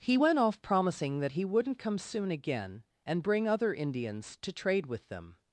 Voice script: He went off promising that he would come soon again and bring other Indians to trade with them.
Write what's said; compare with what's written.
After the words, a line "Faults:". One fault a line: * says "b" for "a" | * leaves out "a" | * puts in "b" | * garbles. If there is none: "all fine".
He went off promising that he wouldn't come soon again and bring other Indians to trade with them.
Faults:
* says "wouldn't" for "would"